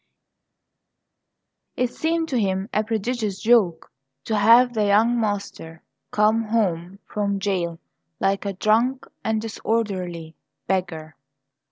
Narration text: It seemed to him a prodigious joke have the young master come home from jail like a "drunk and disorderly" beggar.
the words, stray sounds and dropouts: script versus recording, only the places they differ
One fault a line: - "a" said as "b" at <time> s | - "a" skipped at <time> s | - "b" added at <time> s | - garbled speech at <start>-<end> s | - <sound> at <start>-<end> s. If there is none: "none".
- "to" added at 4.2 s